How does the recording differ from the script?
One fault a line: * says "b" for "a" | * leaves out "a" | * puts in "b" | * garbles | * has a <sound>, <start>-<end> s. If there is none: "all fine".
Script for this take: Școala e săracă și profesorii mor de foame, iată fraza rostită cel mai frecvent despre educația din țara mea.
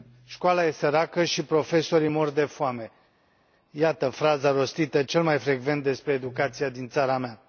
all fine